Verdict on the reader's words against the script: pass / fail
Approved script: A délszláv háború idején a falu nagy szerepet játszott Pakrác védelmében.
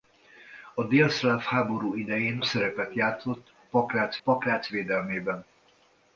fail